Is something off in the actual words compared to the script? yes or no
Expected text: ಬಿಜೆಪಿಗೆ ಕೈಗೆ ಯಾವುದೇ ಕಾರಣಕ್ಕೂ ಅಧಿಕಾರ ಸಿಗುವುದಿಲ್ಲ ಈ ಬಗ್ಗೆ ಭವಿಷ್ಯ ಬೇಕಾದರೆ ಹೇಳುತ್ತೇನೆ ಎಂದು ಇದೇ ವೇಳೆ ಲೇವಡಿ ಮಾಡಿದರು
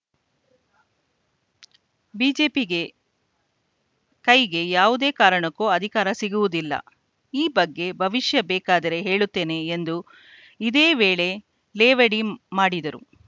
no